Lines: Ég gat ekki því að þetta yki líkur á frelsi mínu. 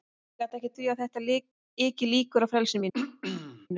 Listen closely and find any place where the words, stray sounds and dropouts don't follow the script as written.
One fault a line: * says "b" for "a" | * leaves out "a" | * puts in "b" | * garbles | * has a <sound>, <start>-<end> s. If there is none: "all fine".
* has a throat clearing, 2.9-3.7 s